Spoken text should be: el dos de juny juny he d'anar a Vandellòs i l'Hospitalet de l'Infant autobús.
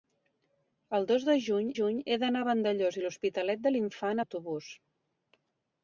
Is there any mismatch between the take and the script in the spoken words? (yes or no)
no